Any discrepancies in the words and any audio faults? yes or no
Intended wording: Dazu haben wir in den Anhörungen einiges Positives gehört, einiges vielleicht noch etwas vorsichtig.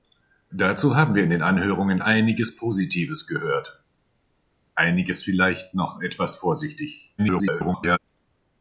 yes